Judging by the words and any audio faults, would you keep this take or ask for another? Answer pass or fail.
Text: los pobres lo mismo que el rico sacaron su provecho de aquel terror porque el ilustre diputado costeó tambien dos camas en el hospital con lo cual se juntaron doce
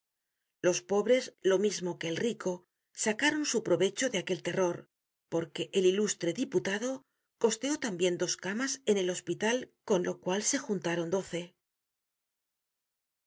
pass